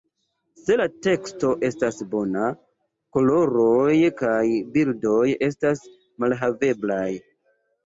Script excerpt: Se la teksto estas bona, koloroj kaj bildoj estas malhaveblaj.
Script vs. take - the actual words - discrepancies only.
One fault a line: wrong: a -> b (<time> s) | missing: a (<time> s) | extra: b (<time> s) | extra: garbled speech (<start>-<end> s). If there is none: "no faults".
no faults